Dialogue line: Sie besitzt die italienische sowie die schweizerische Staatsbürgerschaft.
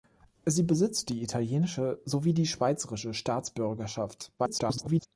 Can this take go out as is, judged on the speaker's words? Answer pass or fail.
fail